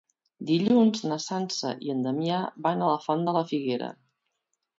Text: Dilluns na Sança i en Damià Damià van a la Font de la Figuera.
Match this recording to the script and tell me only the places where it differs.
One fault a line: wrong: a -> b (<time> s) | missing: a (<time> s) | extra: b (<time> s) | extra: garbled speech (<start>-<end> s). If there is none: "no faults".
missing: Damià (2.4 s)